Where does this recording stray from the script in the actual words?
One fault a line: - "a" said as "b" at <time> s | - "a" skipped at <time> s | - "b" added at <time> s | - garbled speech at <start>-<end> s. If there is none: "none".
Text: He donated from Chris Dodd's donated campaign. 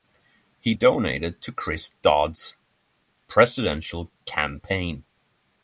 - "from" said as "to" at 1.4 s
- "donated" said as "presidential" at 3.3 s